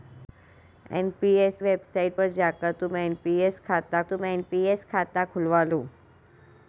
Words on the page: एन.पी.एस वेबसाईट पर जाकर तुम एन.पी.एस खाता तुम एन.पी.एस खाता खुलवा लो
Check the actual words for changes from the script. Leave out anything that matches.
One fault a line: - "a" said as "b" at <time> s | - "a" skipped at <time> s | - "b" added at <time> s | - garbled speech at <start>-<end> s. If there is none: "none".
none